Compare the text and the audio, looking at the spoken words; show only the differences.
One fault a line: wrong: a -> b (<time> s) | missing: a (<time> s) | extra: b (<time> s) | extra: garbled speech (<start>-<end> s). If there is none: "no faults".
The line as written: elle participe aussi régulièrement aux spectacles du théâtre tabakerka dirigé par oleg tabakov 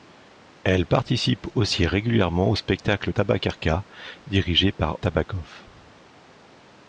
missing: du théâtre (3.1 s)
missing: oleg (5.0 s)